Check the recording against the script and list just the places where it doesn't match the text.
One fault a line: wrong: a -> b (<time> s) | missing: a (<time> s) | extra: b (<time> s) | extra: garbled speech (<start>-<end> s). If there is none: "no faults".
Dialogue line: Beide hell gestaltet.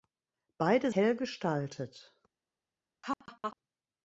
no faults